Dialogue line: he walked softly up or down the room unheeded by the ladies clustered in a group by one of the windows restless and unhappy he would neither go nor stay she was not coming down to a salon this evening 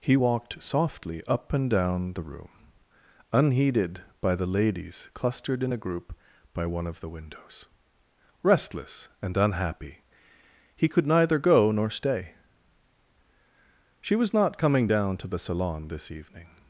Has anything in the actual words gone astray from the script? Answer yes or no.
yes